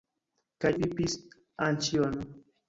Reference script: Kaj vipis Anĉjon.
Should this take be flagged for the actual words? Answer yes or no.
no